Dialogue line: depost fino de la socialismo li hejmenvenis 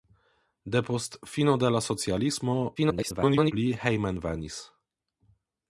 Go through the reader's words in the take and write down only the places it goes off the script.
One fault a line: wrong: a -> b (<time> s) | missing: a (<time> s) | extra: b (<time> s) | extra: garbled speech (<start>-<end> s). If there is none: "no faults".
extra: garbled speech (2.8-3.5 s)